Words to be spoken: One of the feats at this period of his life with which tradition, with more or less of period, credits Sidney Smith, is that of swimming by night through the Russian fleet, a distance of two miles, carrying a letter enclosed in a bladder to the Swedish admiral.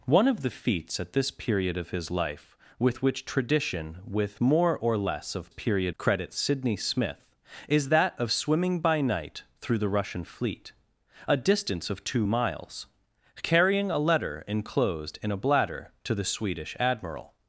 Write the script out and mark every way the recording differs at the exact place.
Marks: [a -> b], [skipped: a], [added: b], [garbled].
One of the feats at this period of his life with which tradition, with more or less of period, credits Sidney Smith, is that of swimming by night through the Russian fleet, a distance of two miles, carrying a letter enclosed in a bladder to the Swedish admiral.